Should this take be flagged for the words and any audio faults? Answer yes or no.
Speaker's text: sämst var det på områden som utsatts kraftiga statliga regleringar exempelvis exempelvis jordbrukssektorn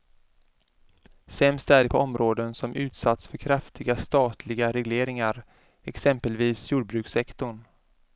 yes